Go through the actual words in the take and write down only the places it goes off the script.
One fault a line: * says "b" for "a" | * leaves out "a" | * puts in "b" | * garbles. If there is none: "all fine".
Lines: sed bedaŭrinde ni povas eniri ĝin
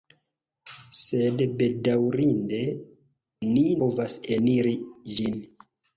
all fine